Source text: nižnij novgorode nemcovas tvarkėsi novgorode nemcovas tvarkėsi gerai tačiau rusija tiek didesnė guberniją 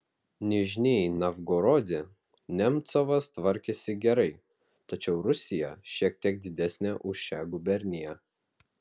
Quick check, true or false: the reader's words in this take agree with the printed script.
false